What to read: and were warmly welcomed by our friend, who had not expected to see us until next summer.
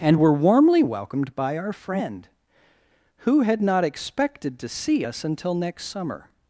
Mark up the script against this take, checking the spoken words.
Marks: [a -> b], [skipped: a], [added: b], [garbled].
and were warmly welcomed by our friend, who had not expected to see us until next summer.